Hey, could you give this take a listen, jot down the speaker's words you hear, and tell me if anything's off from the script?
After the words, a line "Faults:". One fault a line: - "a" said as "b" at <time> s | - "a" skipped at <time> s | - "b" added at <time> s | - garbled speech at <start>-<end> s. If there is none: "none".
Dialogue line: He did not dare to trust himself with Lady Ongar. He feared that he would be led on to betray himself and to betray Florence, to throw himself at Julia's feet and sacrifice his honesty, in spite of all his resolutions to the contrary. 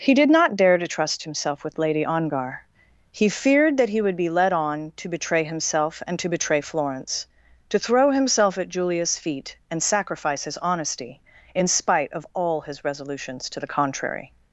He did not dare to trust himself with Lady Ongar. He feared that he would be led on to betray himself and to betray Florence, to throw himself at Julia's feet and sacrifice his honesty, in spite of all his resolutions to the contrary.
Faults:
none